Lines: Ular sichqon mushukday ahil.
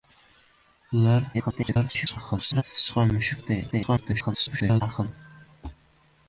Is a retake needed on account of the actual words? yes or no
yes